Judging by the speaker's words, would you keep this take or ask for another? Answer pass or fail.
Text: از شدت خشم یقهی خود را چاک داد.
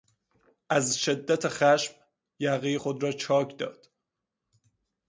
pass